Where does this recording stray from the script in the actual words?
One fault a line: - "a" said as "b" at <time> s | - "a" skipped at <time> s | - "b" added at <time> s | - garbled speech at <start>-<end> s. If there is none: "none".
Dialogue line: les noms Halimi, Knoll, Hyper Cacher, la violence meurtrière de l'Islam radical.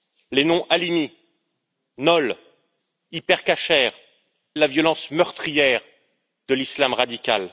none